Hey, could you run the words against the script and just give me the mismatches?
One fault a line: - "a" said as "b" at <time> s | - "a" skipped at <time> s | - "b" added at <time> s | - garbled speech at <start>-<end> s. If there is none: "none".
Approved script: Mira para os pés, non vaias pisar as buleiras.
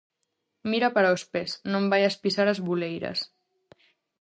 none